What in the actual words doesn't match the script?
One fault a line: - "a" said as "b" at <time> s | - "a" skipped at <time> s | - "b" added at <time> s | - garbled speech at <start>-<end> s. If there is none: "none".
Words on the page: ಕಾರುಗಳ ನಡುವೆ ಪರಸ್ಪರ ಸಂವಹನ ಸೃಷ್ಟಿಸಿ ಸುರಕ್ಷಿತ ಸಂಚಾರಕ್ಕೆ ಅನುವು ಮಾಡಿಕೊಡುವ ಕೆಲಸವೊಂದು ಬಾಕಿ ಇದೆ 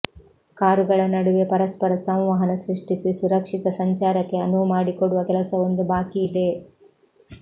none